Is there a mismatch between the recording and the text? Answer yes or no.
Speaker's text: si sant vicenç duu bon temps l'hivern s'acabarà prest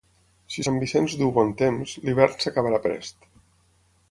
no